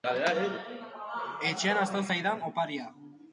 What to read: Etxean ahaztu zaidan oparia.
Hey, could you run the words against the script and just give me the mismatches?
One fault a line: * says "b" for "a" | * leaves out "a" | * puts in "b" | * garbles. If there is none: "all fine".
all fine